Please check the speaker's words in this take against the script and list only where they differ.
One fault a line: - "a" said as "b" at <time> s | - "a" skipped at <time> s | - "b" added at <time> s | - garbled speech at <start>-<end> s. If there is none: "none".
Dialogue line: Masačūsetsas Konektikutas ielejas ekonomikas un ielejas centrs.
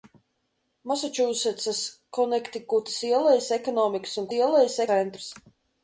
none